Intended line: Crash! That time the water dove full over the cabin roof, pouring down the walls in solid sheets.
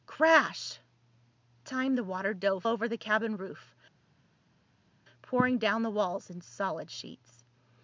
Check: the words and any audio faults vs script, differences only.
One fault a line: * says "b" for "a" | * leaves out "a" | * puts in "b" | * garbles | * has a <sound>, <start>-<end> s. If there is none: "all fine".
* leaves out "That"
* leaves out "full"